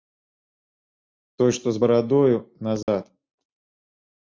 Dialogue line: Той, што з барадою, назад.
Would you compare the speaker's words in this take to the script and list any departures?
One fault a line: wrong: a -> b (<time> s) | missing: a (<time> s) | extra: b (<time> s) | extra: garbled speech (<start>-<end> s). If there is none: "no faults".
no faults